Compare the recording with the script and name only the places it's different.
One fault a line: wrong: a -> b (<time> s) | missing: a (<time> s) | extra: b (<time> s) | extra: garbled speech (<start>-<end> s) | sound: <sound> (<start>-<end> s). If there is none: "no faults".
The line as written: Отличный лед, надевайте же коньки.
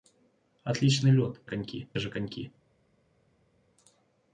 wrong: надевайте -> коньки (1.5 s)